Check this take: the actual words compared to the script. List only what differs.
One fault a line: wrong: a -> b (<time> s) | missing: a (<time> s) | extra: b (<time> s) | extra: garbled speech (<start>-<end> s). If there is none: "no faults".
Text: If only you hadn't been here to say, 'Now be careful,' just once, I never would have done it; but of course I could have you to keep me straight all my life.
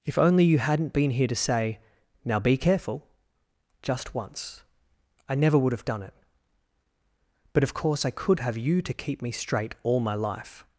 no faults